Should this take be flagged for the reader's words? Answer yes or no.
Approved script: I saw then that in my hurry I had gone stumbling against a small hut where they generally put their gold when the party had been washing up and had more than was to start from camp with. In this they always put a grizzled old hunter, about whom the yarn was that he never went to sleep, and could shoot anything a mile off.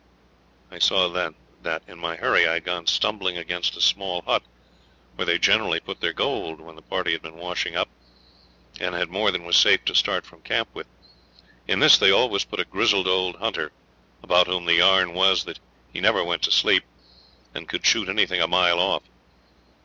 yes